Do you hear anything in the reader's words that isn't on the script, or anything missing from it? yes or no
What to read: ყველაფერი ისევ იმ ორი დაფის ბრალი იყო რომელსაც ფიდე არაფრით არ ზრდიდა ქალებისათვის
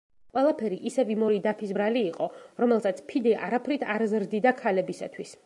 no